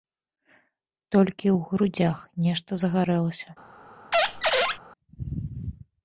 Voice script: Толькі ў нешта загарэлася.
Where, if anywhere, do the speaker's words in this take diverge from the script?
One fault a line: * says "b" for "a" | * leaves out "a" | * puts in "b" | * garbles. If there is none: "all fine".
* puts in "грудзях"